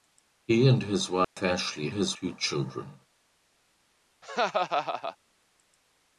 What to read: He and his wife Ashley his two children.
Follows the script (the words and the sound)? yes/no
no